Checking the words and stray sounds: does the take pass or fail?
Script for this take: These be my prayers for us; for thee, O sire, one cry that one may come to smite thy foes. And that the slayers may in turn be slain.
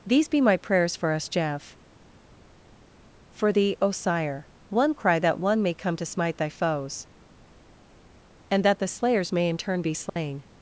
fail